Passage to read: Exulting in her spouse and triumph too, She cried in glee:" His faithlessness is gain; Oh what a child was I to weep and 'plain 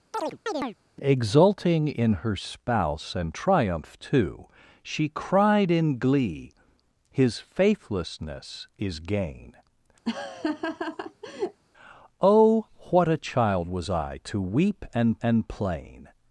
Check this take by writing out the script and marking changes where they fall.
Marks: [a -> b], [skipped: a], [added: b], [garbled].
Exulting in her spouse and triumph too, She cried in glee:" His faithlessness is gain; Oh what a child was I to weep and [added: and] 'plain